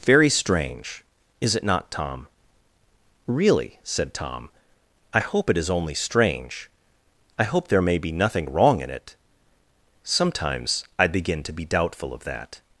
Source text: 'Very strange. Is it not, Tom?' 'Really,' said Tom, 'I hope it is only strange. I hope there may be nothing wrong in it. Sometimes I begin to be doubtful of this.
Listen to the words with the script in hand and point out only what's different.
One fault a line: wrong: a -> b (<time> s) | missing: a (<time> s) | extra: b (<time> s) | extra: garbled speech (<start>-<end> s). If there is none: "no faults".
wrong: this -> that (12.2 s)